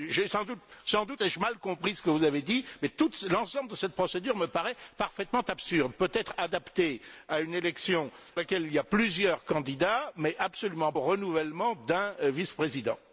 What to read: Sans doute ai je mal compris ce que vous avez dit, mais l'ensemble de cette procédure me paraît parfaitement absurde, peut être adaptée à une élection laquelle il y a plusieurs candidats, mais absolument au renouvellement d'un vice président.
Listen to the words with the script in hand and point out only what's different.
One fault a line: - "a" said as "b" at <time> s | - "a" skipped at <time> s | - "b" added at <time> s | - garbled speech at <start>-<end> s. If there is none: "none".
none